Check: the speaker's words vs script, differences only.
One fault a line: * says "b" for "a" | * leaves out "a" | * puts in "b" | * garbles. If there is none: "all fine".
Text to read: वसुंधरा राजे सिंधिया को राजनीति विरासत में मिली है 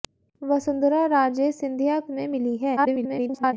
* leaves out "को राजनीति विरासत"
* garbles